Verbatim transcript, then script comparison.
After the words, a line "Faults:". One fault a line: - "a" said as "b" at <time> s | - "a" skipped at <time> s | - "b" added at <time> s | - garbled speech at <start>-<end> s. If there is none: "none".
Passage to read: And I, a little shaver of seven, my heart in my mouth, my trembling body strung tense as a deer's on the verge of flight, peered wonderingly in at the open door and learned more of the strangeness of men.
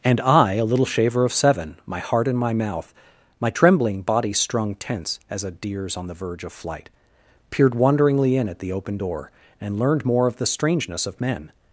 And I, a little shaver of seven, my heart in my mouth, my trembling body strung tense as a deer's on the verge of flight, peered wonderingly in at the open door and learned more of the strangeness of men.
Faults:
none